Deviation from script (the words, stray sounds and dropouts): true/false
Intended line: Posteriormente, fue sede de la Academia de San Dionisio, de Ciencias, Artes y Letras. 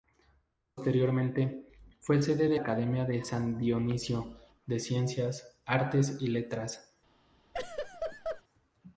true